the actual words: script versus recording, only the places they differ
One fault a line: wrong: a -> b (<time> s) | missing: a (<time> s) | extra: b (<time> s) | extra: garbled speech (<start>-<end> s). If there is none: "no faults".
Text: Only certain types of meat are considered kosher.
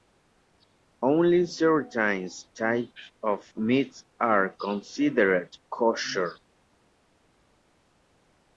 no faults